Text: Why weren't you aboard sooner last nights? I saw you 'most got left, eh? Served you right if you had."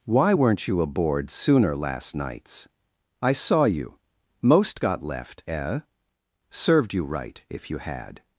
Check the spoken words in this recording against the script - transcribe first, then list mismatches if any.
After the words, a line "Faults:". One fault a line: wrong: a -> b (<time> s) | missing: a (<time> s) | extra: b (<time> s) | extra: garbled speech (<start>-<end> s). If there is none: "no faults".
Why weren't you aboard sooner last nights? I saw you 'most got left, eh? Served you right if you had."
Faults:
no faults